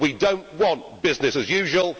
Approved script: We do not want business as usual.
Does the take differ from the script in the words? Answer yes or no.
no